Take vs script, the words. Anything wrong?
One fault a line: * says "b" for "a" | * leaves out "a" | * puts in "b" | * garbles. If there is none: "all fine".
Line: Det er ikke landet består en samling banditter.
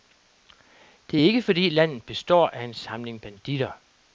* puts in "fordi"
* puts in "af"